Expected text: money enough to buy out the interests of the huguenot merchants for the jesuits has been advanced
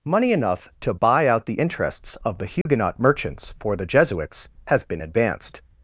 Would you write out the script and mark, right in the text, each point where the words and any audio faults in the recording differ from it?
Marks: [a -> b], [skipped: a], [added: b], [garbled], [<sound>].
money enough to buy out the interests of the huguenot [dropout] merchants for the jesuits has been advanced